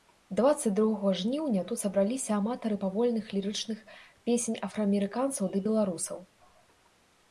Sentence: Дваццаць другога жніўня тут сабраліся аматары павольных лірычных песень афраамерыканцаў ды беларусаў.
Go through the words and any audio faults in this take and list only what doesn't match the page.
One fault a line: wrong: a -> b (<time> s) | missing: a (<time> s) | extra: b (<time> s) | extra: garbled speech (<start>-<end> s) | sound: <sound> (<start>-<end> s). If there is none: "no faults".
no faults